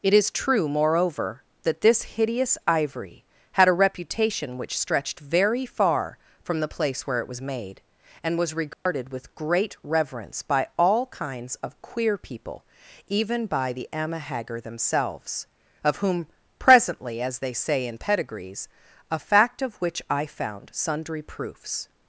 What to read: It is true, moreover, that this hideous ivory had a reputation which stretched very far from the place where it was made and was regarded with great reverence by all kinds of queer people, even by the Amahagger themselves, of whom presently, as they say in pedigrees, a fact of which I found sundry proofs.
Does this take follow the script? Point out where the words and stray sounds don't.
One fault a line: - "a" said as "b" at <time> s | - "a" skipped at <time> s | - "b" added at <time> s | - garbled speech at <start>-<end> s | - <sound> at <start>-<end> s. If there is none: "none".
- dropout at 8.7-8.9 s